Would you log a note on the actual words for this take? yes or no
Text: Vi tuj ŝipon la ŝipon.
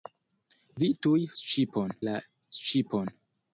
no